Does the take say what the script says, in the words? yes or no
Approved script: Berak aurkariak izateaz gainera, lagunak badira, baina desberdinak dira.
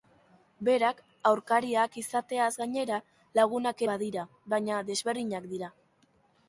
yes